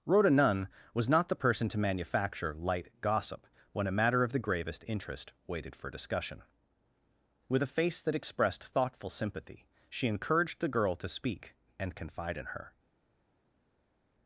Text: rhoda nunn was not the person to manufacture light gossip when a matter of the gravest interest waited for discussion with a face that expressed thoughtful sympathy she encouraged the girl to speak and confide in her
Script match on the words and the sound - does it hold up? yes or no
yes